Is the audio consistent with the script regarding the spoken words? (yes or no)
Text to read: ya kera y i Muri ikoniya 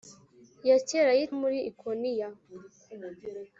yes